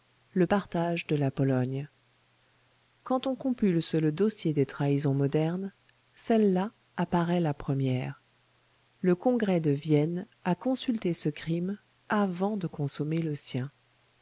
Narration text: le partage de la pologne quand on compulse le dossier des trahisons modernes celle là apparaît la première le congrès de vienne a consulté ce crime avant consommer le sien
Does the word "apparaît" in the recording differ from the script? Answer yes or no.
no